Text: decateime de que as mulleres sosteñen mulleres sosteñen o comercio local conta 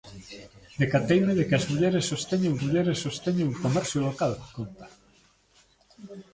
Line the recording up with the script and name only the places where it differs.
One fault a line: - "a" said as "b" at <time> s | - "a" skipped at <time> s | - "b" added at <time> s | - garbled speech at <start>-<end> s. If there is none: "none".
none